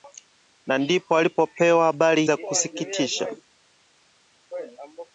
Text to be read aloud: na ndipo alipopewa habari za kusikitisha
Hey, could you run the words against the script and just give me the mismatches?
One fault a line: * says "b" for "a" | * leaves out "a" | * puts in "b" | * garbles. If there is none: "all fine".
all fine